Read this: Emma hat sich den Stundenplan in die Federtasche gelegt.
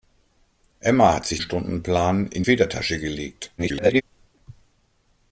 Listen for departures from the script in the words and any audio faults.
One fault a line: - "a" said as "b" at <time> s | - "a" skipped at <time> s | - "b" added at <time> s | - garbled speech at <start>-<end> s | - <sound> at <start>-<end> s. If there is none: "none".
- "den" skipped at 1.4 s
- "die" skipped at 2.4 s
- garbled speech at 3.6-4.0 s